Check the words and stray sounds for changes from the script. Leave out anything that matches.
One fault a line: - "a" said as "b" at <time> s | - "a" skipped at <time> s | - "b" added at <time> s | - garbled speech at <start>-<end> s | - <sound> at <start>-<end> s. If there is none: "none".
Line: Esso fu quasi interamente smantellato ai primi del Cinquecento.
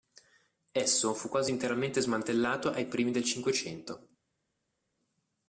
none